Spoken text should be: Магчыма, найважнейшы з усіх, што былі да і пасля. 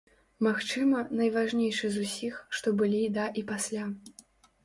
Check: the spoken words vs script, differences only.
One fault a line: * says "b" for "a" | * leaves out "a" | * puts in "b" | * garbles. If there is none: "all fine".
all fine